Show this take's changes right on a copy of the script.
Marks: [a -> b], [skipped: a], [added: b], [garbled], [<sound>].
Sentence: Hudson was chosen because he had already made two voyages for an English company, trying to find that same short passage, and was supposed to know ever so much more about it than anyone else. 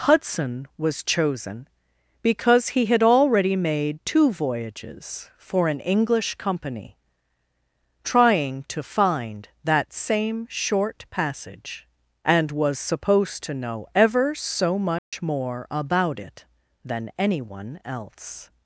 Hudson was chosen because he had already made two voyages for an English company, trying to find that same short passage, and was supposed to know ever so much [dropout] more about it than anyone else.